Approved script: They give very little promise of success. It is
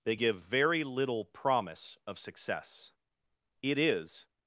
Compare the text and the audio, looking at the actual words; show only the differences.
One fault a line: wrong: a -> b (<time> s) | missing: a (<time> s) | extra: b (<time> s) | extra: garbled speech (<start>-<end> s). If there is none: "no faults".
no faults